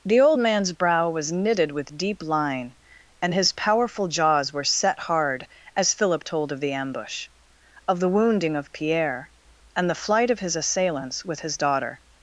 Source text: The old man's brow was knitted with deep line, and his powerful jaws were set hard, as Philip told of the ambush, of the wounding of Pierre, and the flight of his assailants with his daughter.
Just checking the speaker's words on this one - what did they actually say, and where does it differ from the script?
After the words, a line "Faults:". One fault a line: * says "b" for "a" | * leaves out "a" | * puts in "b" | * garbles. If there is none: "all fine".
The old man's brow was knitted with deep line, and his powerful jaws were set hard, as Philip told of the ambush, of the wounding of Pierre, and the flight of his assailants with his daughter.
Faults:
all fine